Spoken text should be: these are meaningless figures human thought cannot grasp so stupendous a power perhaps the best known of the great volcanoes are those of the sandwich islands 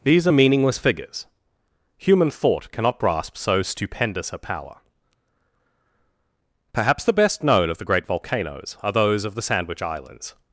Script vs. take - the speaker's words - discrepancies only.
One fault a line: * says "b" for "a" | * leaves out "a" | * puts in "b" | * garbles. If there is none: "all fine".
all fine